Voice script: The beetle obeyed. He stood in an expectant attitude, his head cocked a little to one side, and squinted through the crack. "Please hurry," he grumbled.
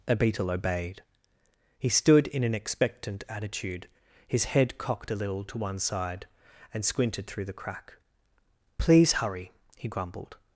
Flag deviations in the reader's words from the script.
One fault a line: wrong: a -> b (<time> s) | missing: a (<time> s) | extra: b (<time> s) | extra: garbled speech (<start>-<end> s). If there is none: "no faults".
wrong: The -> A (0.1 s)